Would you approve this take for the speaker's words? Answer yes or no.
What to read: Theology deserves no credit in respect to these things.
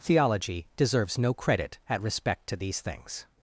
no